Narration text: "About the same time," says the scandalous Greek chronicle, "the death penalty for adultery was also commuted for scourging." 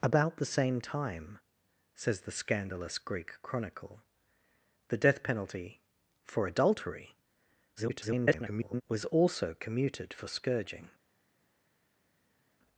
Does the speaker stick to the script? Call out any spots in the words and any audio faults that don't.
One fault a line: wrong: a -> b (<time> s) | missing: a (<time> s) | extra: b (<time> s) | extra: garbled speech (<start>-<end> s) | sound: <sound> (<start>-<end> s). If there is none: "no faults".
extra: garbled speech (7.8-8.8 s)